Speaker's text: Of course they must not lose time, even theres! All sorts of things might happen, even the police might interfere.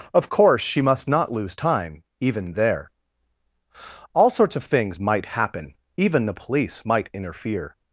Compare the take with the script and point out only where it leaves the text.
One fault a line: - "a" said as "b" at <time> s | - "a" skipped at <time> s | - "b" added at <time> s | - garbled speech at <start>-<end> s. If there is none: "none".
- "they" said as "she" at 0.6 s
- "theres" said as "there" at 2.5 s